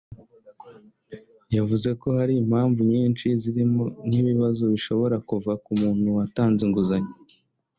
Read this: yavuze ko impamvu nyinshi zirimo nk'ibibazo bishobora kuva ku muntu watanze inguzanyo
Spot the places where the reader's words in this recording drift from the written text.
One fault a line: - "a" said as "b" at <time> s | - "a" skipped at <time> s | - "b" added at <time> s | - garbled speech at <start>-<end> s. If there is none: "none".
- "hari" added at 2.2 s